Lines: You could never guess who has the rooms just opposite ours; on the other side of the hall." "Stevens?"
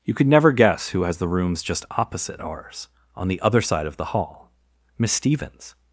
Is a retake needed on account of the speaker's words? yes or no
yes